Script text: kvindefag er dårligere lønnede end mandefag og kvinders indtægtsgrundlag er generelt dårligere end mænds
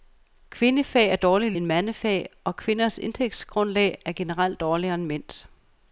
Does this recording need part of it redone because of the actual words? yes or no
yes